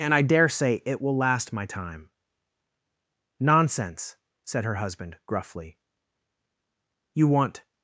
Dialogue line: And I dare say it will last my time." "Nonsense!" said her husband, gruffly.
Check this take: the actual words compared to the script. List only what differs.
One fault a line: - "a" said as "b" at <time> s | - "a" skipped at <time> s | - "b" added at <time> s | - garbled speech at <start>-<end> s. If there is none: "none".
- "You want" added at 7.1 s